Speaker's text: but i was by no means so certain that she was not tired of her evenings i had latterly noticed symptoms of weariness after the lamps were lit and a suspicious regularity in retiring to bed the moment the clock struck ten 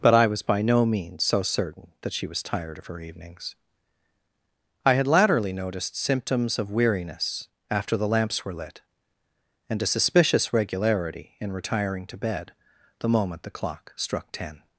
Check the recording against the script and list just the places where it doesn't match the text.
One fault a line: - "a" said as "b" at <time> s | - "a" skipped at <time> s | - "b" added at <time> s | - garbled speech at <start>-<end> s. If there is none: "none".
- "not" skipped at 2.4 s